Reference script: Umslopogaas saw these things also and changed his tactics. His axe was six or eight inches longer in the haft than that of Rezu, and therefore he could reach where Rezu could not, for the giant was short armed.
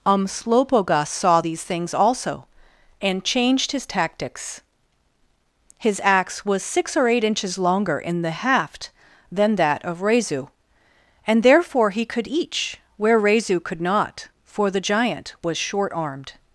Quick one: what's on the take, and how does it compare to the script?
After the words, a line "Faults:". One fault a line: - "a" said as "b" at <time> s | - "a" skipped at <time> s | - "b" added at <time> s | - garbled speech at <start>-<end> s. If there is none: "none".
Umslopogaas saw these things also and changed his tactics. His axe was six or eight inches longer in the haft than that of Rezu, and therefore he could each where Rezu could not, for the giant was short armed.
Faults:
- "reach" said as "each" at 12.2 s